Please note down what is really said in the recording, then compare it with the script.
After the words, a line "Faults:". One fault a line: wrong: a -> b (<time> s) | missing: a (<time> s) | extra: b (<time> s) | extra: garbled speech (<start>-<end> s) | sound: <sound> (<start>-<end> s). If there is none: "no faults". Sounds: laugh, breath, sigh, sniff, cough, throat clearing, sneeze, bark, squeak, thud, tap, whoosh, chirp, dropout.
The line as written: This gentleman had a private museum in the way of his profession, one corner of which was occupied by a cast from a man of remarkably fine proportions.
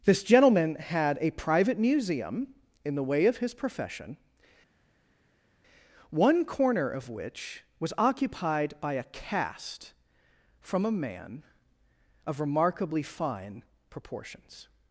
This gentleman had a private museum in the way of his profession, one corner of which was occupied by a cast from a man of remarkably fine proportions.
Faults:
no faults